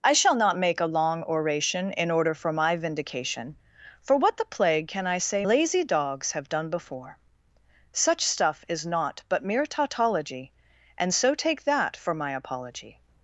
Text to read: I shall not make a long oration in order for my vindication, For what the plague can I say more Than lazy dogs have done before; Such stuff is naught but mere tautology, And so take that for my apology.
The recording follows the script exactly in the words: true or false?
false